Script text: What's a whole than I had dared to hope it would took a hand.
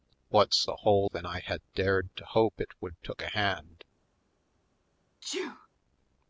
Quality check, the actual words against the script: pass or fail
pass